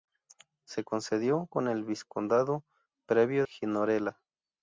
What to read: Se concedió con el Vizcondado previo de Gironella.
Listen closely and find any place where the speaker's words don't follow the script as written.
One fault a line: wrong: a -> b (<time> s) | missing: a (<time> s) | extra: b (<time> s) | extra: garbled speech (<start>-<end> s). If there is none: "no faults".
missing: de (3.4 s)